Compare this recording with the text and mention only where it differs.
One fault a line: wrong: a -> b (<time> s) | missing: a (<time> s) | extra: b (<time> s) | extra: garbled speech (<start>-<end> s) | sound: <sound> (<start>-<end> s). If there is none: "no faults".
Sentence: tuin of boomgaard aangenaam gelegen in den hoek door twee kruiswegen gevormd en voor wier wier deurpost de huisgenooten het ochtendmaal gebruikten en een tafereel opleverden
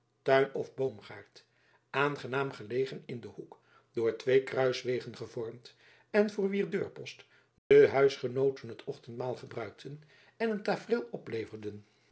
missing: wier (6.7 s)
sound: dropout (7.6-7.7 s)